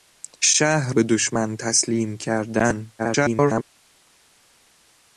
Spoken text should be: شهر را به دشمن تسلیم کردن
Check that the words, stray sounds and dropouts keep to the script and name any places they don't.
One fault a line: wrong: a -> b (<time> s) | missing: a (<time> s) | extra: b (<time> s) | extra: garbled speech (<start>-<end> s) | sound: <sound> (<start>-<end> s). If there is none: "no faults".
missing: را (0.9 s)
extra: garbled speech (3.0-3.6 s)